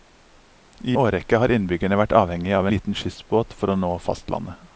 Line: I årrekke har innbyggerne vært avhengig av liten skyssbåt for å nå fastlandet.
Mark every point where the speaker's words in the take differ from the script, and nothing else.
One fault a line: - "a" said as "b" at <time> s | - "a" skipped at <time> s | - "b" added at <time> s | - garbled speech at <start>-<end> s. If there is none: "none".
none